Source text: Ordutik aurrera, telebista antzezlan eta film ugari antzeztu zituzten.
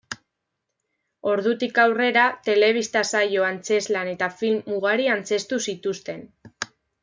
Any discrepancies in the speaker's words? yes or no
yes